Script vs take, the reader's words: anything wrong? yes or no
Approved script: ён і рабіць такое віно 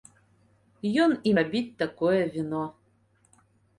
no